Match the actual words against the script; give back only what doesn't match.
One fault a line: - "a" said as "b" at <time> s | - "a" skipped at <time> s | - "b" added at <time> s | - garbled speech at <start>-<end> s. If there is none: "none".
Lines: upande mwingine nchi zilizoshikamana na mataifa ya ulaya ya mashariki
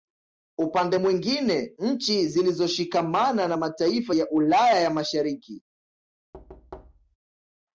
none